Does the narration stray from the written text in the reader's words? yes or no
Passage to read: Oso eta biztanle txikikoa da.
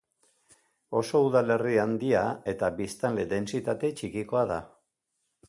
yes